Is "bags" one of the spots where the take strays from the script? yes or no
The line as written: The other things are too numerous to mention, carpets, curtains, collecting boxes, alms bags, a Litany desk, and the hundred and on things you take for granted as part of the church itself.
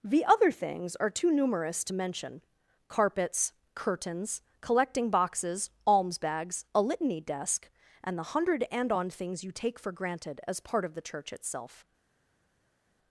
no